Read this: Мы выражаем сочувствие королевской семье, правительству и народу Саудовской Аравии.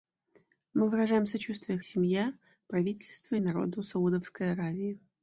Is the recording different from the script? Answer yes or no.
yes